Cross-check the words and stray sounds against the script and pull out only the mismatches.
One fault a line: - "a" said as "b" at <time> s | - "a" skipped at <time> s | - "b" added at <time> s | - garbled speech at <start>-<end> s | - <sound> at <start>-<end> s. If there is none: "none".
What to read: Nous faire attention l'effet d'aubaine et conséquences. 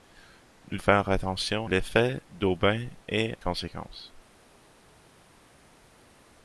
none